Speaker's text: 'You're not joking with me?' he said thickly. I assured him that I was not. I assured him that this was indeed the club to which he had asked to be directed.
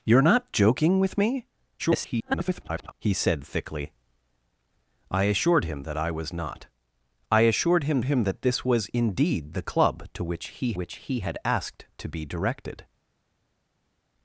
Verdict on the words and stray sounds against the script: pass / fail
fail